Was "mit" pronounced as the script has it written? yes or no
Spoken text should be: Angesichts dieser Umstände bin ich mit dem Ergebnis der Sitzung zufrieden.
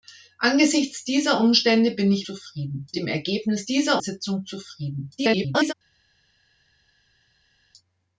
no